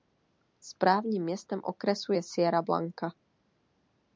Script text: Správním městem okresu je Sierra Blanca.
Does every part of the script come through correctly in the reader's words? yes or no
yes